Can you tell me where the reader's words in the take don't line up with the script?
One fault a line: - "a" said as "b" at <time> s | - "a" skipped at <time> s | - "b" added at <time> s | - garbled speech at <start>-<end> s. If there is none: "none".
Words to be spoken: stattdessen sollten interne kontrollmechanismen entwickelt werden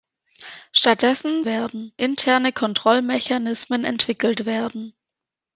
- "sollten" said as "werden" at 1.4 s